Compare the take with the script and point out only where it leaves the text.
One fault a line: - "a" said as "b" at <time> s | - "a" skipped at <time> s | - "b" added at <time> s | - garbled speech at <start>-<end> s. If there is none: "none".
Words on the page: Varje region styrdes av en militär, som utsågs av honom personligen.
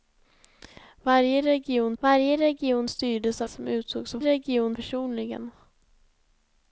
- "varje region" added at 2.0 s
- "en militär" skipped at 3.5 s
- "honom" said as "region" at 4.2 s